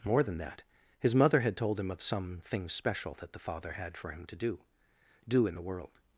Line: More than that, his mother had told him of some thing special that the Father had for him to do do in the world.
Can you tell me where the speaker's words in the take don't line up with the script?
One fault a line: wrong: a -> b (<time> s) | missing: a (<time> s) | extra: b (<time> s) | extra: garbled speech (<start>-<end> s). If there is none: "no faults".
no faults